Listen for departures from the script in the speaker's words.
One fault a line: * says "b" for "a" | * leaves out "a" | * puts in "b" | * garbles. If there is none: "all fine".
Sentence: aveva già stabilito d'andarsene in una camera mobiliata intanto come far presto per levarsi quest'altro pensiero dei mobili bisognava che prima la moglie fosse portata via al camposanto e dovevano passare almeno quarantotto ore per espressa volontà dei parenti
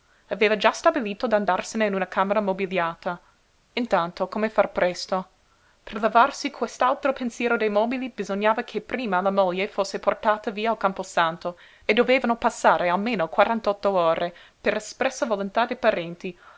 all fine